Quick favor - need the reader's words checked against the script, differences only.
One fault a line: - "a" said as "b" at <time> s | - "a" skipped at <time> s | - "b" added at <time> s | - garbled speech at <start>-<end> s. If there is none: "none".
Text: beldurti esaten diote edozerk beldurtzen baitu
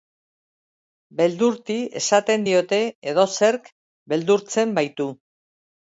none